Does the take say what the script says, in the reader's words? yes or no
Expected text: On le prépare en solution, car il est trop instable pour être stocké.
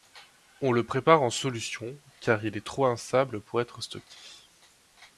yes